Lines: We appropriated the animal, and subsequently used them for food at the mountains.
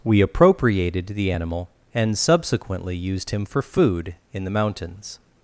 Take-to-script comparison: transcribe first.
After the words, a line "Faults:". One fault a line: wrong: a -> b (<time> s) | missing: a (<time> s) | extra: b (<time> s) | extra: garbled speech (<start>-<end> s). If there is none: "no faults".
We appropriated the animal, and subsequently used him for food in the mountains.
Faults:
wrong: them -> him (3.3 s)
wrong: at -> in (4.3 s)